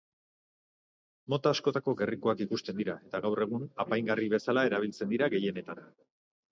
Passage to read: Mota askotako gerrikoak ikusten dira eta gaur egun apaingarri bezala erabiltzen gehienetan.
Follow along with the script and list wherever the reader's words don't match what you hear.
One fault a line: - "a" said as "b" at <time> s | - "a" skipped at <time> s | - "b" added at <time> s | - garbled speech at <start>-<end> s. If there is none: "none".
- "dira" added at 5.2 s